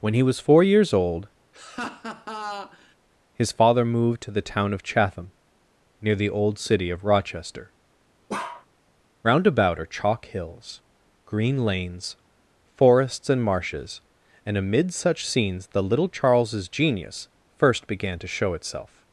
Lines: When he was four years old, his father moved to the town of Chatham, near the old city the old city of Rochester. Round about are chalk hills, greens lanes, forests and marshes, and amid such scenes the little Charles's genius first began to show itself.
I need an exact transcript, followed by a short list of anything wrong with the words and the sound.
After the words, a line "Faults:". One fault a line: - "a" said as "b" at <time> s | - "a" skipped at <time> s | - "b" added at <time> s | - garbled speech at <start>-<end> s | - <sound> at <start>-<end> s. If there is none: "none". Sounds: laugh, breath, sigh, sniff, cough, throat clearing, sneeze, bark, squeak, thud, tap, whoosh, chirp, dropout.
When he was four years old, his father moved to the town of Chatham, near the old city of Rochester. Round about are chalk hills, green lanes, forests and marshes, and amid such scenes the little Charles's genius first began to show itself.
Faults:
- laugh at 1.5-3.0 s
- "the old city" skipped at 6.9 s
- bark at 8.3-8.7 s
- "greens" said as "green" at 11.2 s